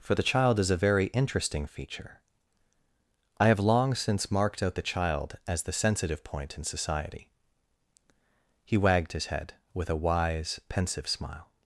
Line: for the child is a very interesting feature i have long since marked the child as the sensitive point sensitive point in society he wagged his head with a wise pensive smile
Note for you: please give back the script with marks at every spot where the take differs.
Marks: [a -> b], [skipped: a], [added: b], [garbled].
for the child is a very interesting feature i have long since marked [added: out] the child as the sensitive point [skipped: sensitive point] in society he wagged his head with a wise pensive smile